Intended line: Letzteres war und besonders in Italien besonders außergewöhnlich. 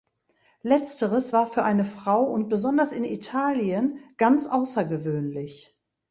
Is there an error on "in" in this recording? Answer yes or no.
no